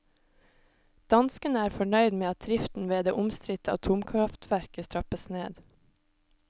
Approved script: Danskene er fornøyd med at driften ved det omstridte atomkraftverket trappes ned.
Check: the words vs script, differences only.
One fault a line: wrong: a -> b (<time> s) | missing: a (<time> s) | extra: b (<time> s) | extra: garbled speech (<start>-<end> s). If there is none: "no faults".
no faults